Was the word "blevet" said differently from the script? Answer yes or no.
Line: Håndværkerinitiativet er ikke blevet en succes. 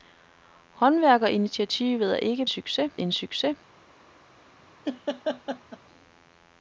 yes